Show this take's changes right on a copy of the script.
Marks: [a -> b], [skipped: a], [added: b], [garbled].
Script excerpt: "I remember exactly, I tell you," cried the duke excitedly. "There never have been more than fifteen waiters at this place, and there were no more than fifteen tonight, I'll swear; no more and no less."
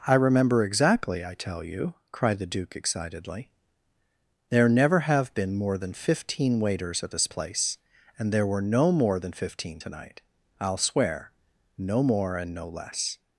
"I remember exactly, I tell you," cried the duke excitedly. "There never have been more than fifteen waiters at this place, and there were no more than fifteen tonight, I'll swear; no more and no less."